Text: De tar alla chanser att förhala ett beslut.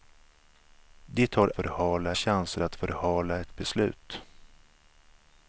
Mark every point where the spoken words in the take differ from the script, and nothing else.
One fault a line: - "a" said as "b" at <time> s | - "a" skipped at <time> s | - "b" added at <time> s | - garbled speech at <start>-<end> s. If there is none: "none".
- "alla" said as "förhala" at 1.5 s